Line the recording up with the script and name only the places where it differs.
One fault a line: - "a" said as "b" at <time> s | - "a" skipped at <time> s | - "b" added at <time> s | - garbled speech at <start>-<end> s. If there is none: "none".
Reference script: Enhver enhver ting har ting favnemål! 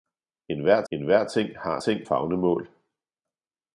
none